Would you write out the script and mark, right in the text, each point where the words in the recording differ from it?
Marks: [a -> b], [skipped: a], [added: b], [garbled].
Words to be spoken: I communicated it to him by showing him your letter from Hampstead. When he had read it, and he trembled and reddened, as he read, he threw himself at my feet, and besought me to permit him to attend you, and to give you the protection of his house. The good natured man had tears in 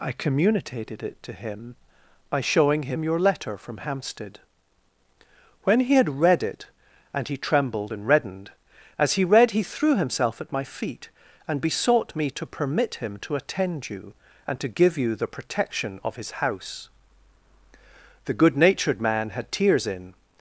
I communicated it to him by showing him your letter from Hampstead. When he had read it, and he trembled and reddened, as he read, he threw himself at my feet, and besought me to permit him to attend you, and to give you the protection of his house. The good natured man had tears in